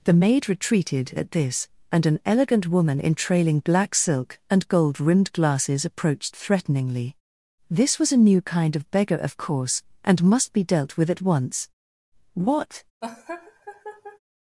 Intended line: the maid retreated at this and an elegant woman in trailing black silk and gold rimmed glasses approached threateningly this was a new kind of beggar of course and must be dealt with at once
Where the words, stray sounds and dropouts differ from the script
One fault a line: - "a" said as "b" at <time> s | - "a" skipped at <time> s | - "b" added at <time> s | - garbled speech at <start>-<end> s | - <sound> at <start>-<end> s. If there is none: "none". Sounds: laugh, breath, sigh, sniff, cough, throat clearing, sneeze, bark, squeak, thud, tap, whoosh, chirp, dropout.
- "what" added at 12.3 s
- laugh at 13.0-14.2 s